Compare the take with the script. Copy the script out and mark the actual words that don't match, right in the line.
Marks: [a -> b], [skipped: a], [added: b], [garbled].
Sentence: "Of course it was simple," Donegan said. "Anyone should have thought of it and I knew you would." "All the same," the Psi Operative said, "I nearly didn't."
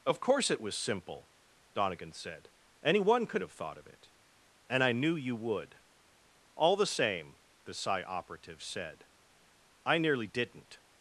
"Of course it was simple," Donegan said. "Anyone [should -> could] have thought of it and I knew you would." "All the same," the Psi Operative said, "I nearly didn't."